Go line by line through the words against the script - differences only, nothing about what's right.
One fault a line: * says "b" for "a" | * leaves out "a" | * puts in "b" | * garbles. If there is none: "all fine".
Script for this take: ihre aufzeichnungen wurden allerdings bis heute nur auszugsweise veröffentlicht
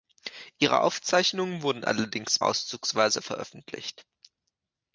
* leaves out "bis heute nur"